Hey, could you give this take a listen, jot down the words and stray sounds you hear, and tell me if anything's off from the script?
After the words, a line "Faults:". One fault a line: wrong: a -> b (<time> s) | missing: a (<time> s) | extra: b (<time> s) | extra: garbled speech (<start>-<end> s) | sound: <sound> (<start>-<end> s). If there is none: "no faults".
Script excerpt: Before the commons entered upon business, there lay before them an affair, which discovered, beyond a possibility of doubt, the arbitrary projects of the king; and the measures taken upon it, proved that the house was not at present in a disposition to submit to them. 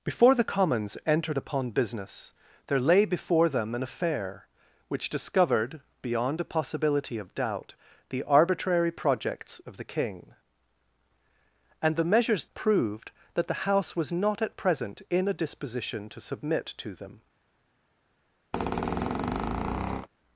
Before the commons entered upon business, there lay before them an affair, which discovered, beyond a possibility of doubt, the arbitrary projects of the king; and the measures proved that the house was not at present in a disposition to submit to them.
Faults:
missing: taken upon it (12.4 s)
sound: squeak (18.5-20.1 s)